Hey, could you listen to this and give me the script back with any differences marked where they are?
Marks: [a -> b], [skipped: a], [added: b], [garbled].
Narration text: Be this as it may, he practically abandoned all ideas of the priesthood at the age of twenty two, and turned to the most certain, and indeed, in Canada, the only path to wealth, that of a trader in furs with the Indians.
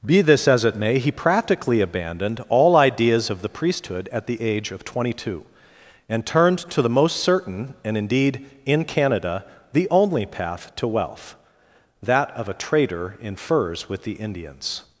Be this as it may, he practically abandoned all ideas of the priesthood at the age of twenty two, and turned to the most certain, and indeed, in Canada, the only path to wealth, that of a trader in furs with the Indians.